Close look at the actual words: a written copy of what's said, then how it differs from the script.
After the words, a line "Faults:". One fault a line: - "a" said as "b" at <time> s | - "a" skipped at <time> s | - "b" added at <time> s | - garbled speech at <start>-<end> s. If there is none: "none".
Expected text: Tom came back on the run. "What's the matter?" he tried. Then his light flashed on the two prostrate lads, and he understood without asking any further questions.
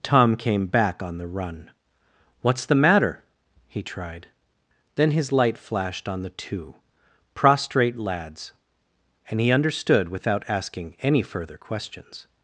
Tom came back on the run. "What's the matter?" he tried. Then his light flashed on the two prostrate lads, and he understood without asking any further questions.
Faults:
none